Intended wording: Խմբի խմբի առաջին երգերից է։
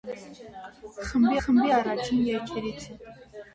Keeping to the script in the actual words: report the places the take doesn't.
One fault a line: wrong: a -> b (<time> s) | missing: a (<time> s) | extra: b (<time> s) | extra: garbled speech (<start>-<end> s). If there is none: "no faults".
no faults